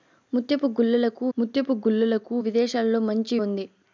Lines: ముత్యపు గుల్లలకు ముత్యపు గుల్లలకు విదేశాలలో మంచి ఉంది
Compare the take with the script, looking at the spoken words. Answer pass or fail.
pass